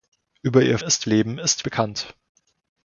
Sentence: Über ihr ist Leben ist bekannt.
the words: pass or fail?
pass